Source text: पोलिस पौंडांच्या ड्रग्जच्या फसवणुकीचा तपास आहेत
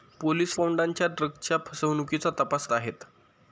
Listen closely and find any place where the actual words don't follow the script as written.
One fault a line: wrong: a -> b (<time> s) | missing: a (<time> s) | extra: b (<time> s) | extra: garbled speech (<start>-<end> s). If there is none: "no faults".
no faults